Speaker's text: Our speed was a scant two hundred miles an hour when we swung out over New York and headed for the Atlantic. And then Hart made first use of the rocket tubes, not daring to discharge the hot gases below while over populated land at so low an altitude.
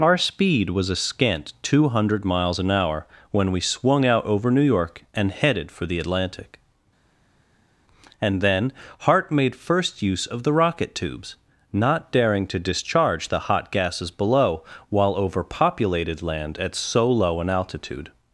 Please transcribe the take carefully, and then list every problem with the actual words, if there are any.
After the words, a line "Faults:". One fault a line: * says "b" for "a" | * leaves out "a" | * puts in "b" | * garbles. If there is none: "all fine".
Our speed was a scant two hundred miles an hour when we swung out over New York and headed for the Atlantic. And then Hart made first use of the rocket tubes, not daring to discharge the hot gases below while over populated land at so low an altitude.
Faults:
all fine